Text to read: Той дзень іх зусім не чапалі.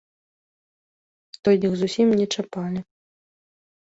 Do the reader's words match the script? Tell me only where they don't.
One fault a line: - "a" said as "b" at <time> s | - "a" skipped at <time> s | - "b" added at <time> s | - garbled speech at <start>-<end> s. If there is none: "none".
- "дзень" skipped at 1.6 s